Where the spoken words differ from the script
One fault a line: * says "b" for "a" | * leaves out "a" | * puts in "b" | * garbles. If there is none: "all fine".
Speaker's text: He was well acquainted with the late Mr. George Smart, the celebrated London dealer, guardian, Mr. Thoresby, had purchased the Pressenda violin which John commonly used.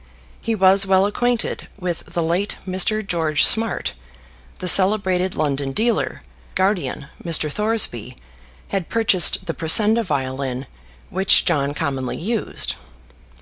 all fine